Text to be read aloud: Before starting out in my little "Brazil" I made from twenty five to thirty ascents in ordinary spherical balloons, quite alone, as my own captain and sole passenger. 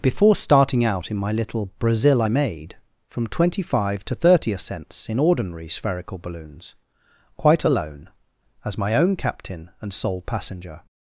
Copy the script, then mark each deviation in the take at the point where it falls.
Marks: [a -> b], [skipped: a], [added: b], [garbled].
Before starting out in my little "Brazil" I made from twenty five to thirty ascents in ordinary spherical balloons, quite alone, as my own captain and sole passenger.